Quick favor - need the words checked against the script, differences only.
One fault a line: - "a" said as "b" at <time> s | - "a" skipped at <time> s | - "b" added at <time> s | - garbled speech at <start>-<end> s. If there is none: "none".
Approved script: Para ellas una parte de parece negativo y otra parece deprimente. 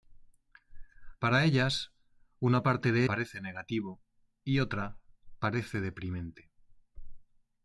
none